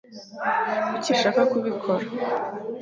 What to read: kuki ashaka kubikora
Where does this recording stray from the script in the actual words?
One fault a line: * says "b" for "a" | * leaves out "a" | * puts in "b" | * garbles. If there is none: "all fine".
all fine